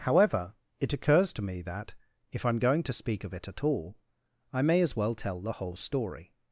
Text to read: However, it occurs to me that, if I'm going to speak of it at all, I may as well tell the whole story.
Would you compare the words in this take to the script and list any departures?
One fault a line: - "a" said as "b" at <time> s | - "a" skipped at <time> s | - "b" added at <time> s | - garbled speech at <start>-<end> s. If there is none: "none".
none